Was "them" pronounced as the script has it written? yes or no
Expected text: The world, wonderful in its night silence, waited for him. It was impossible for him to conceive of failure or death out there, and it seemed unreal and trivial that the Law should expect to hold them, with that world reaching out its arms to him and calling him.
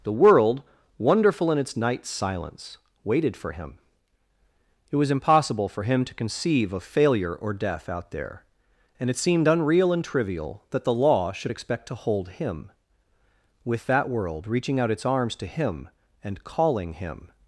no